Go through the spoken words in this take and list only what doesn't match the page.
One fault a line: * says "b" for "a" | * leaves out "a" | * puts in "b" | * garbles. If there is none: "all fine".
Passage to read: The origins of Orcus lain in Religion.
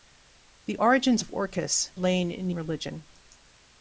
all fine